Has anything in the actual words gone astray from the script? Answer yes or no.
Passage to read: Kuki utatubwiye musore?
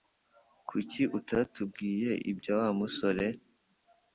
yes